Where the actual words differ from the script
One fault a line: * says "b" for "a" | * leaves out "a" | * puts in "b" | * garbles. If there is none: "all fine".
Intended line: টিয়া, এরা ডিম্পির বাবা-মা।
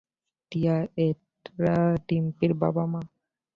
all fine